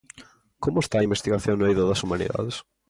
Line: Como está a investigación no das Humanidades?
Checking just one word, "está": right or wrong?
right